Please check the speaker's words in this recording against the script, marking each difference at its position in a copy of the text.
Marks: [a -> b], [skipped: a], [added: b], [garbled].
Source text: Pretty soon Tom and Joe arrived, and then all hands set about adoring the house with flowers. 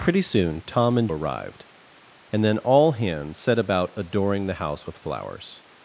Pretty soon Tom and [skipped: Joe] arrived, and then all hands set about adoring the house with flowers.